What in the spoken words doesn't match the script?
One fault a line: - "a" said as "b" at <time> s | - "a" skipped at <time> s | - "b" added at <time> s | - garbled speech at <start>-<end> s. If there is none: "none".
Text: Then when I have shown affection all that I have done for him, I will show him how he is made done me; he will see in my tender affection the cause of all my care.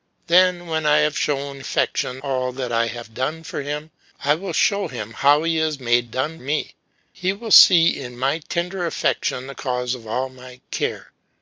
none